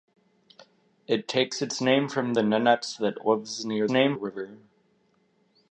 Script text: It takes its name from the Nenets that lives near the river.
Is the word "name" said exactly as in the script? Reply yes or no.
yes